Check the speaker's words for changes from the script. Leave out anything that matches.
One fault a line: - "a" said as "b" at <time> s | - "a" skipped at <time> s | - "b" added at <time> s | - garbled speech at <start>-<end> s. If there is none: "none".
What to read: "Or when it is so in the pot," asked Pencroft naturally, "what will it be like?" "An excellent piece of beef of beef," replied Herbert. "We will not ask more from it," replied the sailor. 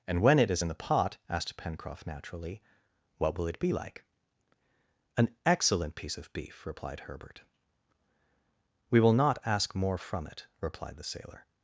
- "Or" said as "And" at 0.1 s
- "so" skipped at 0.6 s
- "of beef" skipped at 6.7 s